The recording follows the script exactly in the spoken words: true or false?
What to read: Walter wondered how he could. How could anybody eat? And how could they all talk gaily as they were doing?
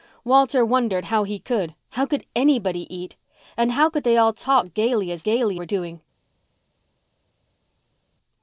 false